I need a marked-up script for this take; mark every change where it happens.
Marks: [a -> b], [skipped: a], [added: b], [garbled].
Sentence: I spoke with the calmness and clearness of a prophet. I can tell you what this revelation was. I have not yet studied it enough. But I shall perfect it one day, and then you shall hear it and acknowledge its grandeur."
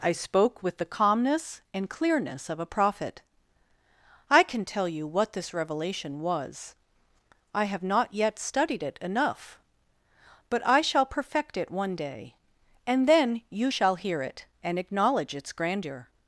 I spoke with the calmness and clearness of a prophet. I can tell you what this revelation was. I have not yet studied it enough. But I shall perfect it one day, and then you shall hear it and acknowledge its grandeur."